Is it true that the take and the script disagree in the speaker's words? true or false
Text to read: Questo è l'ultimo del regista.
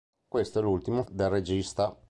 false